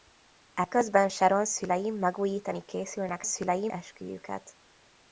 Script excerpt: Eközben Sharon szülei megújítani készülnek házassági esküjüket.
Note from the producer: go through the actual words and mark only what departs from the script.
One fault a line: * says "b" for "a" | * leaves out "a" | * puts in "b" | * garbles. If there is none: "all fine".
* says "szülei" for "házassági"